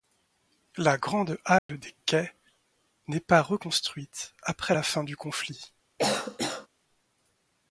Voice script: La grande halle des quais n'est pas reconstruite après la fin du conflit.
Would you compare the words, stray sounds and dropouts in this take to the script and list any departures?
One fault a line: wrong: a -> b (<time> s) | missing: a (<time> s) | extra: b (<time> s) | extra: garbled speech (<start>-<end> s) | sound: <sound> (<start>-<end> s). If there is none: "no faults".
sound: dropout (1.6-1.7 s)
sound: cough (6.0-6.7 s)